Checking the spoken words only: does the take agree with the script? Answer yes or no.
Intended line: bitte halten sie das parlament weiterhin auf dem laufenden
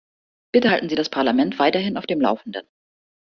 yes